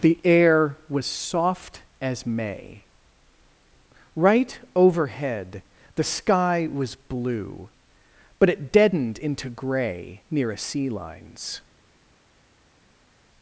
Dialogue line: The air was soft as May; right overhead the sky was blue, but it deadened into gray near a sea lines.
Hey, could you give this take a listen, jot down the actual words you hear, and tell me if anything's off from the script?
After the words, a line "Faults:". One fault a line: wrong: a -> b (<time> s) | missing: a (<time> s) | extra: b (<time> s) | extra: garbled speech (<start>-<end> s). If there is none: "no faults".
The air was soft as May; right overhead the sky was blue, but it deadened into gray near a sea lines.
Faults:
no faults